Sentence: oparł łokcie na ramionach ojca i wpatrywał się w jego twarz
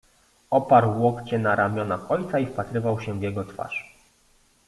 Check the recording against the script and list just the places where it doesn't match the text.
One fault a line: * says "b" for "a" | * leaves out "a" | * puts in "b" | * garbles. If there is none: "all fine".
all fine